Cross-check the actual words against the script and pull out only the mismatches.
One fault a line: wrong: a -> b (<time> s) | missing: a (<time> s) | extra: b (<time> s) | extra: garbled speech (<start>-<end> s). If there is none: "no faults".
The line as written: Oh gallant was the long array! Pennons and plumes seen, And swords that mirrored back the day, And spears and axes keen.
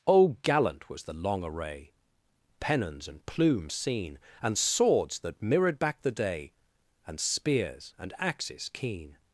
no faults